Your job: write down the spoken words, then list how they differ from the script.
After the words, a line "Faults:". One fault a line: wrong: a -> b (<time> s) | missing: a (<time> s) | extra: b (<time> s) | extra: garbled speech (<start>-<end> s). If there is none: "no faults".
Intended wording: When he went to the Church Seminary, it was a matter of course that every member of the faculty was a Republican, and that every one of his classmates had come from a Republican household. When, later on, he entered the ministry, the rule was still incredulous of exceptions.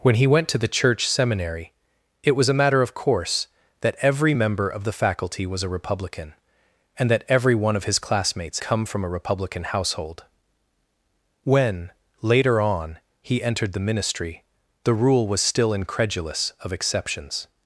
When he went to the Church Seminary, it was a matter of course that every member of the faculty was a Republican, and that every one of his classmates come from a Republican household. When, later on, he entered the ministry, the rule was still incredulous of exceptions.
Faults:
missing: had (8.6 s)